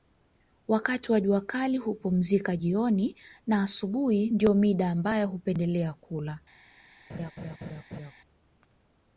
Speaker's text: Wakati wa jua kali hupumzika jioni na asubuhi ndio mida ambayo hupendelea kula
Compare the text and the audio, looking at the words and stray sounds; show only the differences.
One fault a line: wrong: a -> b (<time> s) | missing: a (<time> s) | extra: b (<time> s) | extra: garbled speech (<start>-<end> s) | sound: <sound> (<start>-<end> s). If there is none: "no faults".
sound: laugh (7.1-8.1 s)